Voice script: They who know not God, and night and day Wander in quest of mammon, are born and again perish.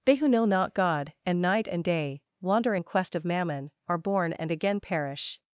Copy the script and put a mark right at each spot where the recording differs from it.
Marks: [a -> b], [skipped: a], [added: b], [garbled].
They who know not God, and night and day Wander in quest of mammon, are born and again perish.